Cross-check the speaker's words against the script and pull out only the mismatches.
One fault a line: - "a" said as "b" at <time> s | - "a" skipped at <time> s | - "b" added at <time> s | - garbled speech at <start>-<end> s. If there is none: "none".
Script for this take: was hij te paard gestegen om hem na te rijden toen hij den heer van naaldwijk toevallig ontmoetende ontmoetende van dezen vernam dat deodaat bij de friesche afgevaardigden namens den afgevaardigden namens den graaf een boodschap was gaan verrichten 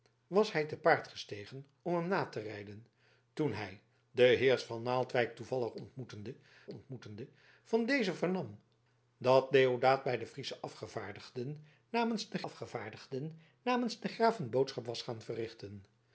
none